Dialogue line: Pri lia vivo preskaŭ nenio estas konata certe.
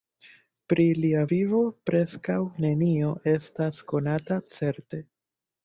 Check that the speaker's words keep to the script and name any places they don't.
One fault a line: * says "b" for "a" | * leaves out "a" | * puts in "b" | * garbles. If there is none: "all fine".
all fine